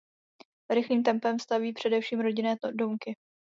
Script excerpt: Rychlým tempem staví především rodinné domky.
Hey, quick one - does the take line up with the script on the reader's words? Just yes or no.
yes